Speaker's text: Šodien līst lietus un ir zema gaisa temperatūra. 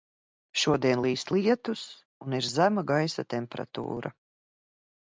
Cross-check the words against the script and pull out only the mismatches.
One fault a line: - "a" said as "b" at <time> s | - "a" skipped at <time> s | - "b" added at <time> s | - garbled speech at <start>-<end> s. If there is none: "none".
none